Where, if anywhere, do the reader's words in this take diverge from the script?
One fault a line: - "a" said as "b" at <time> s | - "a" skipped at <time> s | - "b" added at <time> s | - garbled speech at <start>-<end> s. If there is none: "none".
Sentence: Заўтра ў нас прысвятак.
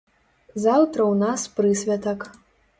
none